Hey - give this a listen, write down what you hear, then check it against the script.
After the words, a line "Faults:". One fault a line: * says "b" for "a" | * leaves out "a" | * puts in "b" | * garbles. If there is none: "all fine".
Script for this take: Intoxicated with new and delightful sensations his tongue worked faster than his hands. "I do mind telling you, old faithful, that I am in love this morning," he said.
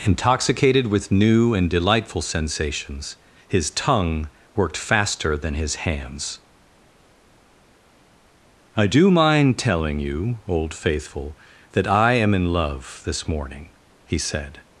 Intoxicated with new and delightful sensations his tongue worked faster than his hands. "I do mind telling you, old faithful, that I am in love this morning," he said.
Faults:
all fine